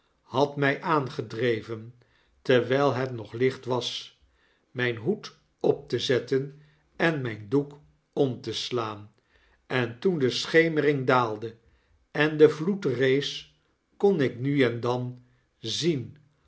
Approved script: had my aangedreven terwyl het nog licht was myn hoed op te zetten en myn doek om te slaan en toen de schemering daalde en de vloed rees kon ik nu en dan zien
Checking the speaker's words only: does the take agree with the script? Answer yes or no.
yes